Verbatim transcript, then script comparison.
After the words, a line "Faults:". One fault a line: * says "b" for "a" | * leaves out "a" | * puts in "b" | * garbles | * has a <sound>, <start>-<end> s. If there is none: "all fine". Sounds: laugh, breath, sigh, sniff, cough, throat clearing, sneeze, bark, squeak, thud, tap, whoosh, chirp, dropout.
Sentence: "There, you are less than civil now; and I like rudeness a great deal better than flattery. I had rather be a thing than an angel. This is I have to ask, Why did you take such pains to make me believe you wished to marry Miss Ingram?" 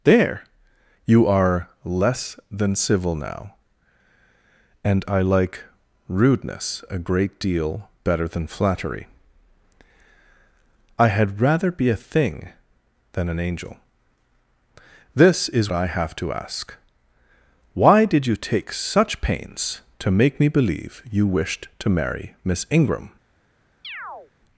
"There, you are less than civil now; and I like rudeness a great deal better than flattery. I had rather be a thing than an angel. This is I have to ask, Why did you take such pains to make me believe you wished to marry Miss Ingram?"
Faults:
* has a chirp, 23.8-24.3 s